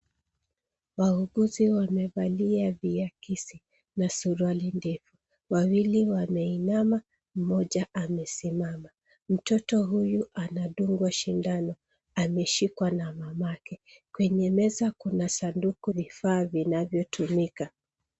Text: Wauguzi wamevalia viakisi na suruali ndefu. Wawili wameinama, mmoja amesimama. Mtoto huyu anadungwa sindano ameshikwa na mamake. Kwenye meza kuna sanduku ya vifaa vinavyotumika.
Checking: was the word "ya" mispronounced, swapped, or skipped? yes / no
yes